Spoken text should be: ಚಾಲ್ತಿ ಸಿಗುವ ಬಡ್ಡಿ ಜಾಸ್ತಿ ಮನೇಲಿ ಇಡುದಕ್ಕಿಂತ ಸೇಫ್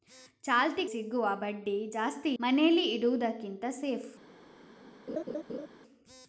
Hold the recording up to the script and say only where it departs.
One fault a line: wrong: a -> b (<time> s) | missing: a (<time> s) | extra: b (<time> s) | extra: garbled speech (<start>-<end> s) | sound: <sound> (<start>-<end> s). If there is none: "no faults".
sound: laugh (5.1-5.7 s)